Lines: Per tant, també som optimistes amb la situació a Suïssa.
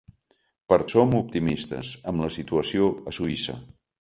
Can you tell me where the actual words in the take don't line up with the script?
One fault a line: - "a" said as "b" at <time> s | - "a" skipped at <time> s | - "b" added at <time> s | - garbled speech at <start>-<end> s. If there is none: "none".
- "tant també" skipped at 0.8 s